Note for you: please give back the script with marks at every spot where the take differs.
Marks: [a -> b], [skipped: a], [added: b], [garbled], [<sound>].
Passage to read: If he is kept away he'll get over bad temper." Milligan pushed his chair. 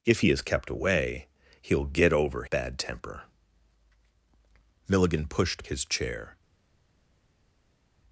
If he is kept away he'll get over bad temper." Milligan pushed his chair.